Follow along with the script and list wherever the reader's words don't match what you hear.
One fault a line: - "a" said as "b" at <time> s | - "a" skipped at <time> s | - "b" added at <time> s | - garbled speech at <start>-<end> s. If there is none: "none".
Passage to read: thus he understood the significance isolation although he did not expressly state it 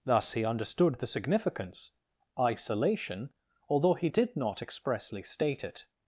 none